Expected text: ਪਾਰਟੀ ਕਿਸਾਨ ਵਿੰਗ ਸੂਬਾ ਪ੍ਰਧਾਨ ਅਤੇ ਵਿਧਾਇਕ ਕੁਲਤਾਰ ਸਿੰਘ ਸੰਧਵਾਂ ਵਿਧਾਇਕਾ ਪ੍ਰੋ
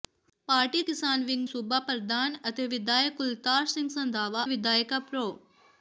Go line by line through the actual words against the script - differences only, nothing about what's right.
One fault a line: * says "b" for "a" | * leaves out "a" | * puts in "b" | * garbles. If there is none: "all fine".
all fine